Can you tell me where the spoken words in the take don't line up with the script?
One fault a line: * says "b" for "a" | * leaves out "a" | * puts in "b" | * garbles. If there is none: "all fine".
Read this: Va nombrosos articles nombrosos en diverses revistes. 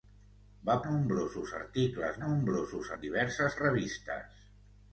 all fine